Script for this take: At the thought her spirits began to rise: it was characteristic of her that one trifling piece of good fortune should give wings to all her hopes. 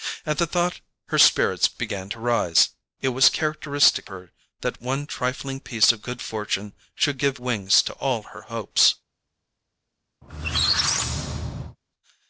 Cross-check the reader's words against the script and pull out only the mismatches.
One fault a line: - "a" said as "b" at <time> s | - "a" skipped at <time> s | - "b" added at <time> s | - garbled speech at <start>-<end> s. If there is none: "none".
- "of" skipped at 4.1 s